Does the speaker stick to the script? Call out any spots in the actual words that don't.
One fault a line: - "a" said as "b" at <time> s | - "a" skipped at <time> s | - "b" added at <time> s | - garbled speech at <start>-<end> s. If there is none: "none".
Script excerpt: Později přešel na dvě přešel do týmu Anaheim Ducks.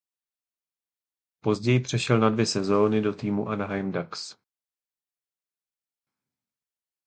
- "přešel" said as "sezóny" at 2.5 s